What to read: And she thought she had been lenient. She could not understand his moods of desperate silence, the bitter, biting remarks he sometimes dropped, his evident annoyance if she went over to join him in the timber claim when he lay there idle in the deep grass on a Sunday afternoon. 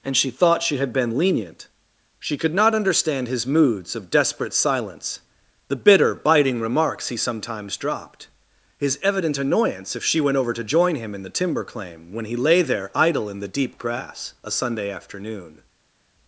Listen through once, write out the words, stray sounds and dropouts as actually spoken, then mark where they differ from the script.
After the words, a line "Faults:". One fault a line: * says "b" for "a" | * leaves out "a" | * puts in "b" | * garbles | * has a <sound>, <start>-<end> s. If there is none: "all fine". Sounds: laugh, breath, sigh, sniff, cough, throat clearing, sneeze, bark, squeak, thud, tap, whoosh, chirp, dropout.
And she thought she had been lenient. She could not understand his moods of desperate silence, the bitter, biting remarks he sometimes dropped, his evident annoyance if she went over to join him in the timber claim when he lay there idle in the deep grass a Sunday afternoon.
Faults:
* leaves out "on"